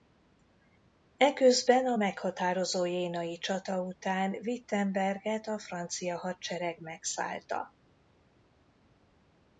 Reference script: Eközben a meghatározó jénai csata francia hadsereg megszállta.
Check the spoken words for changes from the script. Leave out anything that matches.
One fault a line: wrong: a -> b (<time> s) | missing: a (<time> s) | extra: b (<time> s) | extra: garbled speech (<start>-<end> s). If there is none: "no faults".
extra: után Wittenberget a (3.8 s)